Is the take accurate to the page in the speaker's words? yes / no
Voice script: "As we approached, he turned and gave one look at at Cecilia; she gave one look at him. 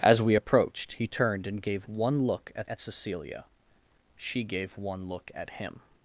yes